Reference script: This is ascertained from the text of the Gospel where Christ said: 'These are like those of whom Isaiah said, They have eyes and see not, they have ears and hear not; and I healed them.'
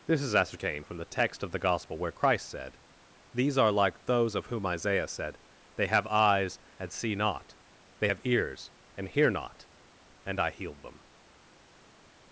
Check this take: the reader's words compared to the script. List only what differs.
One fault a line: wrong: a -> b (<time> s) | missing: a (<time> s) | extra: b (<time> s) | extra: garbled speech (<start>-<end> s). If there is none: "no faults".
no faults